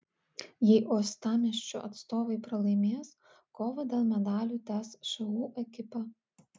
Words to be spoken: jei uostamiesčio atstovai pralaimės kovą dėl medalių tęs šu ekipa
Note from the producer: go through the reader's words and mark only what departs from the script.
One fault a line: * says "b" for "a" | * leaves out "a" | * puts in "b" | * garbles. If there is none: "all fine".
all fine